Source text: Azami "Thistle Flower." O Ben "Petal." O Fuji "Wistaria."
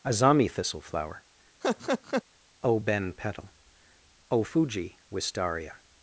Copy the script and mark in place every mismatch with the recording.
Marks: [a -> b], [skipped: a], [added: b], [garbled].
Azami "Thistle Flower." O Ben "Petal." O Fuji "Wistaria."